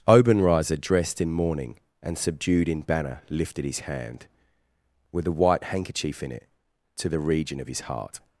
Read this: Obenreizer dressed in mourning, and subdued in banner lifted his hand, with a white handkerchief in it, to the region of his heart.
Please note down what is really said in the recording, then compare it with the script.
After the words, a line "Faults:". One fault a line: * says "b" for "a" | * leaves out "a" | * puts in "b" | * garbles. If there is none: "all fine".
Obenreizer dressed in mourning, and subdued in banner lifted his hand, with a white handkerchief in it, to the region of his heart.
Faults:
all fine